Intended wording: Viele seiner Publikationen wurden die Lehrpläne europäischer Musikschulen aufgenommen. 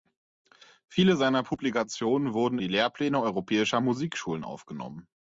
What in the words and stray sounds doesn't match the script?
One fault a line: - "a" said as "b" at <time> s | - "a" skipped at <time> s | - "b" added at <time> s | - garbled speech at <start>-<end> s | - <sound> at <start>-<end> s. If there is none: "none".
none